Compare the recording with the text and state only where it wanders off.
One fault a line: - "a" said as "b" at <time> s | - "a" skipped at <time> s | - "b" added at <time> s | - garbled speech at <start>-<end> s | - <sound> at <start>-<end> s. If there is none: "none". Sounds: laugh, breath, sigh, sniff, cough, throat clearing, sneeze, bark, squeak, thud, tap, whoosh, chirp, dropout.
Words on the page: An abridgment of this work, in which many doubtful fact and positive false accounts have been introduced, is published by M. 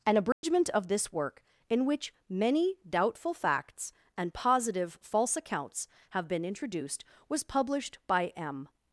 - dropout at 0.3-0.4 s
- "fact" said as "facts" at 3.3 s
- "is" said as "was" at 7.3 s